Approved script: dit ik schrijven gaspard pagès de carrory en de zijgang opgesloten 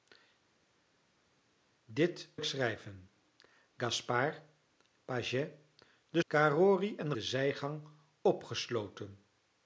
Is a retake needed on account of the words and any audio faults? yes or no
no